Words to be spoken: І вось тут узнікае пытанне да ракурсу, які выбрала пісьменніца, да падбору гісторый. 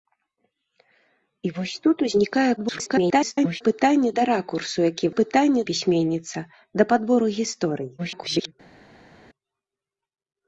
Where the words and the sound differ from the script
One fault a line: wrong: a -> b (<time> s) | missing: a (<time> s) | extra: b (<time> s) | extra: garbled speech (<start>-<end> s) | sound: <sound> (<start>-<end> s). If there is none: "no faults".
extra: garbled speech (2.6-3.6 s)
wrong: выбрала -> пытанне (5.2 s)
extra: garbled speech (8.0-8.5 s)